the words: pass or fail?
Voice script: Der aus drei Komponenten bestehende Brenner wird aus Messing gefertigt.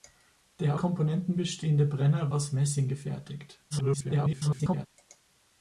fail